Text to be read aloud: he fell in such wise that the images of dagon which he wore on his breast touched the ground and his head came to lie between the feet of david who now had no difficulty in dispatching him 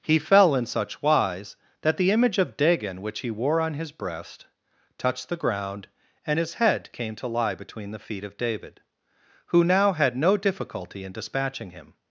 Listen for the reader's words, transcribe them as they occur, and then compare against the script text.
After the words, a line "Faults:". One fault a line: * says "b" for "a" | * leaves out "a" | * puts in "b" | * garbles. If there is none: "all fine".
he fell in such wise that the image of dagon which he wore on his breast touched the ground and his head came to lie between the feet of david who now had no difficulty in dispatching him
Faults:
* says "image" for "images"